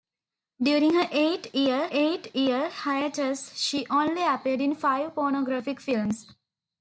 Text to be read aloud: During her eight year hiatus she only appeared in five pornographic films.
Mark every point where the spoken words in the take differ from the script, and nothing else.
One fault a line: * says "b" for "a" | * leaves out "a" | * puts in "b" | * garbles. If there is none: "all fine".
* puts in "eight year"